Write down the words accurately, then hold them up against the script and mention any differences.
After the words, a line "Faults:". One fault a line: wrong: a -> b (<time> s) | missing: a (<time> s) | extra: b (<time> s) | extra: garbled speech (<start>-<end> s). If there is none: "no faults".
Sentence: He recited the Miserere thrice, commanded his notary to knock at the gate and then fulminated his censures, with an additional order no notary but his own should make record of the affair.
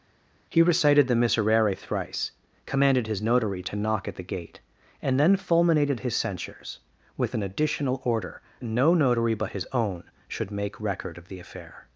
He recited the Miserere thrice, commanded his notary to knock at the gate and then fulminated his censures, with an additional order no notary but his own should make record of the affair.
Faults:
no faults